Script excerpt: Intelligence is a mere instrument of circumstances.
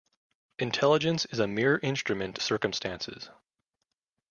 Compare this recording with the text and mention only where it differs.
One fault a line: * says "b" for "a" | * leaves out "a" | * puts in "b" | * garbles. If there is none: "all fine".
* leaves out "of"